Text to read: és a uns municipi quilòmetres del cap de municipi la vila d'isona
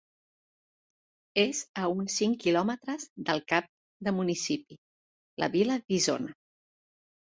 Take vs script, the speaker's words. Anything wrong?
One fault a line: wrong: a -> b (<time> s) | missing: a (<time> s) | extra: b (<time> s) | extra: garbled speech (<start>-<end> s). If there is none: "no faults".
wrong: municipi -> cinc (2.2 s)